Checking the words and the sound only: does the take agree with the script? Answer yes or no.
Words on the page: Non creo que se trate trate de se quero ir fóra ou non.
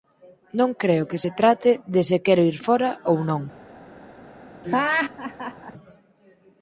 no